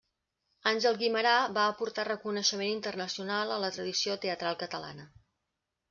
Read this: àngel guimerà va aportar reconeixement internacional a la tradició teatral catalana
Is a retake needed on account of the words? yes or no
no